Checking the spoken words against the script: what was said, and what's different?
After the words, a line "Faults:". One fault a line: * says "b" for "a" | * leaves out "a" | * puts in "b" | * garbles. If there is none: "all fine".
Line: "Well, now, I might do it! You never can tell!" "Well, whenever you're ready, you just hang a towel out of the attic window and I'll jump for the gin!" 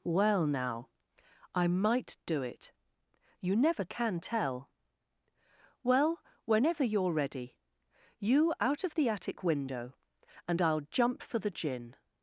"Well, now, I might do it! You never can tell!" "Well, whenever you're ready, you out of the attic window and I'll jump for the gin!"
Faults:
* leaves out "just hang a towel"